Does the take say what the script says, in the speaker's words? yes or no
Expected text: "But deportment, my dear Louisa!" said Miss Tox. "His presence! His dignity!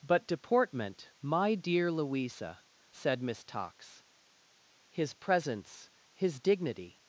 yes